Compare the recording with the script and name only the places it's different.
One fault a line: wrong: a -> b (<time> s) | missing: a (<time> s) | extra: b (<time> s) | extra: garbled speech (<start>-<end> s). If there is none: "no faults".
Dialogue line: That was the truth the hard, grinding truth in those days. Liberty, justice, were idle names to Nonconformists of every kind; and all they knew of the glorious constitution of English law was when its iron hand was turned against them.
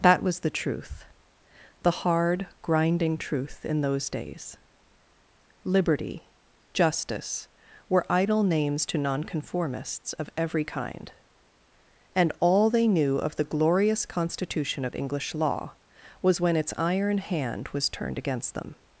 no faults